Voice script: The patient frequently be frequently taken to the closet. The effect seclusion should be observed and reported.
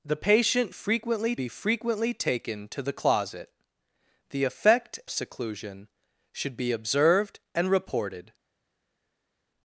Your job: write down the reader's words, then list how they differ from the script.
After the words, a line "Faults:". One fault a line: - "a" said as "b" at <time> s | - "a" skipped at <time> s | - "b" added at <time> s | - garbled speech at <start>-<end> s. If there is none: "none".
The patient frequently be frequently taken to the closet. The effect seclusion should be observed and reported.
Faults:
none